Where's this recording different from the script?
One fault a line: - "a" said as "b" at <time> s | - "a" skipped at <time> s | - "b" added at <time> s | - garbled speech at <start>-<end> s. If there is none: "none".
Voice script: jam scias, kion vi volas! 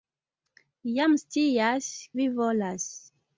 - "kion" skipped at 1.9 s